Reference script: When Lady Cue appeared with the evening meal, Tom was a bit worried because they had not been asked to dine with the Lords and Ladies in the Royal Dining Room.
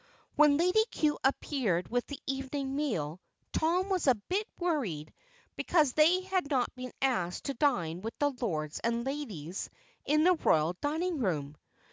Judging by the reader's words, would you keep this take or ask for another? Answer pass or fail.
pass